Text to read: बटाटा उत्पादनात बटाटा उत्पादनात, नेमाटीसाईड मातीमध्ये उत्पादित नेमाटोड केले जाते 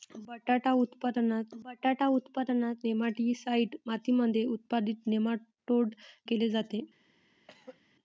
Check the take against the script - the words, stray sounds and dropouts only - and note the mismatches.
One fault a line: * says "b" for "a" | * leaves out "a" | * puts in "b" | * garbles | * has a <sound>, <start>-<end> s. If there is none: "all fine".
* has a throat clearing, 7.5-7.8 s